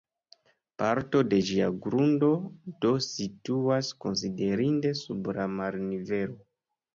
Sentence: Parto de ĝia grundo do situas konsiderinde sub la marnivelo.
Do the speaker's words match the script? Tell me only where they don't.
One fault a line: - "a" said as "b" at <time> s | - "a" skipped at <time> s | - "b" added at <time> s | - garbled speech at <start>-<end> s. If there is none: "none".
none